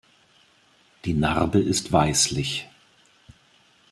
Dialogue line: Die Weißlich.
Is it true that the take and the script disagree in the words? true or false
true